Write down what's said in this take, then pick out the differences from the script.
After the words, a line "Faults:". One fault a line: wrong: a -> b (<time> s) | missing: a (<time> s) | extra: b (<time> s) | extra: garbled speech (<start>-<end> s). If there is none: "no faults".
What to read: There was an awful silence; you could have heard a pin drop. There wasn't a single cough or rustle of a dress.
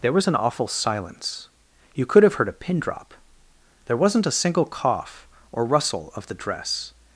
There was an awful silence; you could have heard a pin drop. There wasn't a single cough or rustle of the dress.
Faults:
wrong: a -> the (6.3 s)